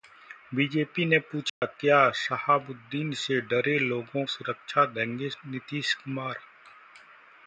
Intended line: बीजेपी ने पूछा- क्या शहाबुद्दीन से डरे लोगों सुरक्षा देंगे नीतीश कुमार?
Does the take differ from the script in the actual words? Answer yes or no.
no